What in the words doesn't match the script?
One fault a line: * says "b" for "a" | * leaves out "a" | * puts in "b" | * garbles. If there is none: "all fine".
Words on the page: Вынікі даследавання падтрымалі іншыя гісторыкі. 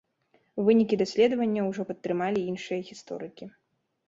* puts in "ўжо"